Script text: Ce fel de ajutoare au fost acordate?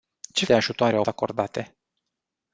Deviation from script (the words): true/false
true